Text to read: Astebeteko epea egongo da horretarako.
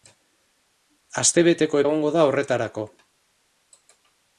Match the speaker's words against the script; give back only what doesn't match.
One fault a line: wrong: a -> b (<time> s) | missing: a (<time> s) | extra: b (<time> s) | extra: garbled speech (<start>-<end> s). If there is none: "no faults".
missing: epea (1.8 s)